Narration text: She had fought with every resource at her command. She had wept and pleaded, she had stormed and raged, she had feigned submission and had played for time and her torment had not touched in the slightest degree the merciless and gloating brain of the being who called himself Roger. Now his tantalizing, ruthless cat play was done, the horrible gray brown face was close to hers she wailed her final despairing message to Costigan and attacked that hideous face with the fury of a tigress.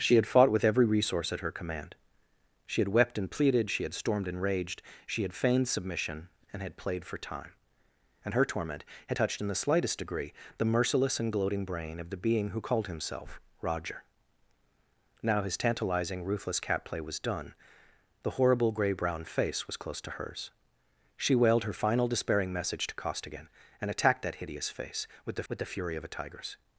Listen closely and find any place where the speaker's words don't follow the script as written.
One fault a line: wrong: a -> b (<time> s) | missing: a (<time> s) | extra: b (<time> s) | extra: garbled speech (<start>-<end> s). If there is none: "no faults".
missing: not (9.2 s)
extra: with the (25.5 s)